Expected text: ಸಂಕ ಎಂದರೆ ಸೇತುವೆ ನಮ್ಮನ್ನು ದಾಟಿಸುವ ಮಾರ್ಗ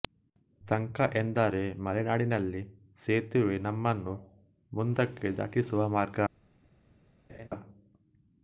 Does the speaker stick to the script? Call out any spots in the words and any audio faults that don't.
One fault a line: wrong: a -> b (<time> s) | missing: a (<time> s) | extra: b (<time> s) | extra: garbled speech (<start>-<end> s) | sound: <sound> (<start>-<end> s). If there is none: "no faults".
extra: ಮಲೆನಾಡಿನಲ್ಲಿ (1.8 s)
extra: ಮುಂದಕ್ಕೆ (4.7 s)
sound: laugh (7.3-7.5 s)